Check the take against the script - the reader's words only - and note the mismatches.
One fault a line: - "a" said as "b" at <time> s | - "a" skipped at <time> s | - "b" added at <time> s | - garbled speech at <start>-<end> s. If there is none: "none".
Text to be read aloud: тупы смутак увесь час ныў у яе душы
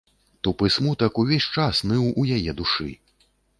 none